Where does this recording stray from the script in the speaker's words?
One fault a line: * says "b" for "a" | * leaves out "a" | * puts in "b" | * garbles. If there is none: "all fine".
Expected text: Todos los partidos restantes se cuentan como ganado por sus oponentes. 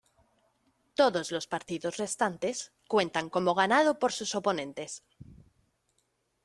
* leaves out "se"